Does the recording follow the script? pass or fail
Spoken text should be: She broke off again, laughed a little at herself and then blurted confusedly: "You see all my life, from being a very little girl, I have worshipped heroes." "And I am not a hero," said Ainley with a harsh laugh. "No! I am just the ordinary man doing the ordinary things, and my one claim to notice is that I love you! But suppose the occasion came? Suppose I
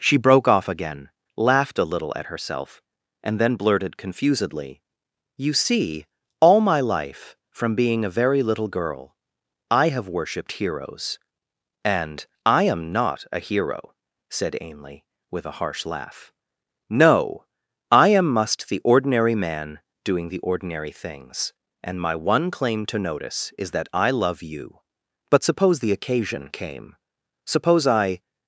fail